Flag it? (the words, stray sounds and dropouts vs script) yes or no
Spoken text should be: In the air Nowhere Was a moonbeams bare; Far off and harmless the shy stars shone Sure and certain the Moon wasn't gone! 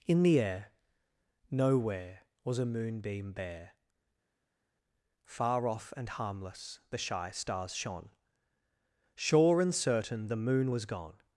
yes